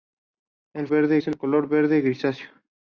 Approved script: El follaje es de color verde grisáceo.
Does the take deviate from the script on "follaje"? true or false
true